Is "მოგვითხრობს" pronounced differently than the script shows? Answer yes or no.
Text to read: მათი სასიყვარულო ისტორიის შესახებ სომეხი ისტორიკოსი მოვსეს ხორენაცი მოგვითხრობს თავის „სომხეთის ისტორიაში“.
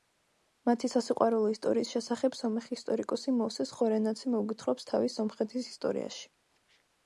no